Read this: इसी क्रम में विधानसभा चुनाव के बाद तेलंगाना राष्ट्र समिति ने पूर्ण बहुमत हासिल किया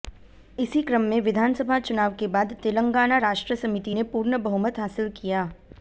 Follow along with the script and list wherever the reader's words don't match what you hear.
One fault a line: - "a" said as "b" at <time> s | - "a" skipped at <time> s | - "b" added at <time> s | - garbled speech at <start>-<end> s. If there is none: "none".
none